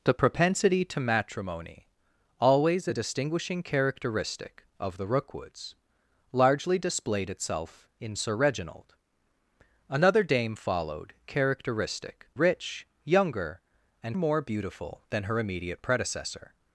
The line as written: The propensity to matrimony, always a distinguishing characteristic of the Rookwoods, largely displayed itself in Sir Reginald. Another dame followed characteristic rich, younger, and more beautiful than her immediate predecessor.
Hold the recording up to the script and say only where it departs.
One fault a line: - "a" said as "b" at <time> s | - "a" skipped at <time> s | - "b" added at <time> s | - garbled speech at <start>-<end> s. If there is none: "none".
none